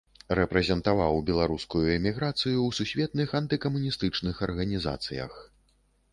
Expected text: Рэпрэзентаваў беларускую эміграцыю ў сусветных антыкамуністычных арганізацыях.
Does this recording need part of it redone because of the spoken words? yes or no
no